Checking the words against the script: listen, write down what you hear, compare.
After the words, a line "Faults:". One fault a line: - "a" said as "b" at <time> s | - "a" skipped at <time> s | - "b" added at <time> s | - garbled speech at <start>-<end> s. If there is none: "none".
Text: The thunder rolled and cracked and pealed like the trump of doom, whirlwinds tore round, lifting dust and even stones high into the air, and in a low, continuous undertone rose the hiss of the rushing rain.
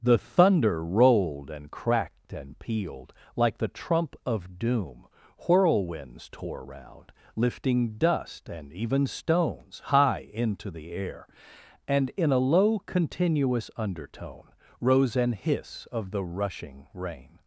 The thunder rolled and cracked and pealed like the trump of doom, whirlwinds tore round, lifting dust and even stones high into the air, and in a low, continuous undertone rose an hiss of the rushing rain.
Faults:
- "the" said as "an" at 15.2 s